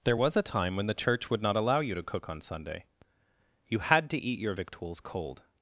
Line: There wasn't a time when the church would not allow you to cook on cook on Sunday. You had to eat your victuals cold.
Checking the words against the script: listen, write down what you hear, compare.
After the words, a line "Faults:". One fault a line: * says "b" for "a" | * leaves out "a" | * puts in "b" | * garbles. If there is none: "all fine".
There was a time when the church would not allow you to cook on Sunday. You had to eat your victuals cold.
Faults:
* says "was" for "wasn't"
* leaves out "cook on"